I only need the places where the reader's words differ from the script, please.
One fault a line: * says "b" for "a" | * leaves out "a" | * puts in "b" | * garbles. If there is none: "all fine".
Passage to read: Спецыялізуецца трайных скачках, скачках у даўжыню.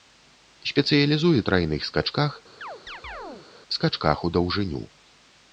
all fine